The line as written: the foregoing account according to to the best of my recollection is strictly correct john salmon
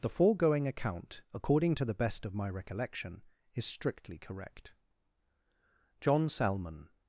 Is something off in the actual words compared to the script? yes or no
yes